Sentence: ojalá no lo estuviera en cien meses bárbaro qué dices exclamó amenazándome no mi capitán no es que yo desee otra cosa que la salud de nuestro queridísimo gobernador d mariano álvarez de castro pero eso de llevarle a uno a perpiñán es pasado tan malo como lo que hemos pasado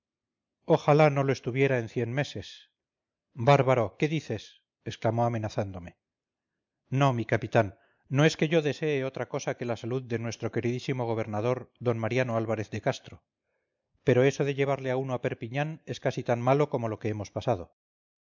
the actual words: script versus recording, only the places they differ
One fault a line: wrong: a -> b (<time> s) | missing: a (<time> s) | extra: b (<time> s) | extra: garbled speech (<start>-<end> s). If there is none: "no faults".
wrong: pasado -> casi (16.0 s)